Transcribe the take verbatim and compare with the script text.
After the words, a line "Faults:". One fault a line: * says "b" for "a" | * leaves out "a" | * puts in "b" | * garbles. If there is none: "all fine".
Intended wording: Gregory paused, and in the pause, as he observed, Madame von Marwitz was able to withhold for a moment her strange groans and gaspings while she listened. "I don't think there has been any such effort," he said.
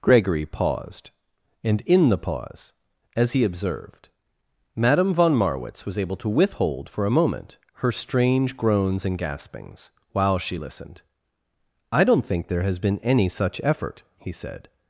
Gregory paused, and in the pause, as he observed, Madame von Marwitz was able to withhold for a moment her strange groans and gaspings while she listened. "I don't think there has been any such effort," he said.
Faults:
all fine